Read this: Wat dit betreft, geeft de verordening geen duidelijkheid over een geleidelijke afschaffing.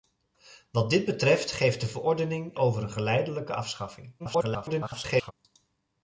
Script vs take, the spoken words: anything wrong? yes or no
yes